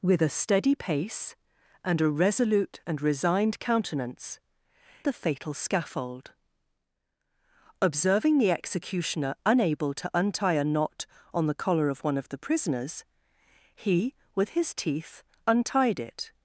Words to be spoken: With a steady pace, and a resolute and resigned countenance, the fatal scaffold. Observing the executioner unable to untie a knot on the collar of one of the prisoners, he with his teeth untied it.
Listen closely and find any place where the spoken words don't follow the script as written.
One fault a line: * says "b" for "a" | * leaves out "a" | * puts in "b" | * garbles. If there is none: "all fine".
all fine